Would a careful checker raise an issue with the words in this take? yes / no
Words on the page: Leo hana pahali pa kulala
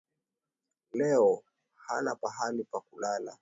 no